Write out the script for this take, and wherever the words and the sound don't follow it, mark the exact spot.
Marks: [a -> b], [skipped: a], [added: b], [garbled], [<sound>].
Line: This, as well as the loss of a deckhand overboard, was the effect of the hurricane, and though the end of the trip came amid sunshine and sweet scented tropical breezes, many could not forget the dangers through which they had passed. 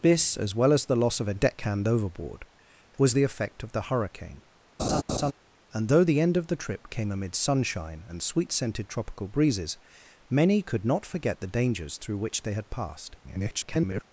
This, as well as the loss of a deckhand overboard, was the effect of the hurricane, [laugh] and though the end of the trip came amid sunshine and sweet scented tropical breezes, many could not forget the dangers through which they had passed. [garbled]